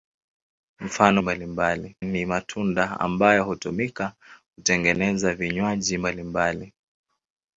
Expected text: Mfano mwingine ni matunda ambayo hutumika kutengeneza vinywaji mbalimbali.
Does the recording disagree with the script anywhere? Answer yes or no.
yes